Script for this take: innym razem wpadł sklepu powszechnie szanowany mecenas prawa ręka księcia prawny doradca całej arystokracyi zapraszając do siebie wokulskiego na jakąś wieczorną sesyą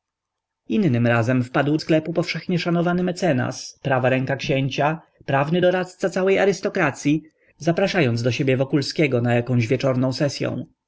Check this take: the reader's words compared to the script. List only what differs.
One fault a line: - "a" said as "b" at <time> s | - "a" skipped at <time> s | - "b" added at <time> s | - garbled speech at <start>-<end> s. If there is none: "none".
none